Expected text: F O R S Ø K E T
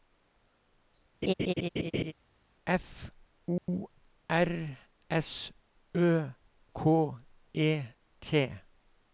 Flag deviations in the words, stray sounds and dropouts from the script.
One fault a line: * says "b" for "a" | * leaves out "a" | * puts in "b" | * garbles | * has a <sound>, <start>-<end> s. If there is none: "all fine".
* has a laugh, 1.2-2.1 s
* has a dropout, 3.6-3.7 s